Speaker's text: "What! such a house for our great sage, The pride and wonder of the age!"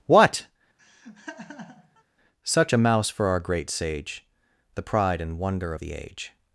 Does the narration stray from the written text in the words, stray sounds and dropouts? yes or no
yes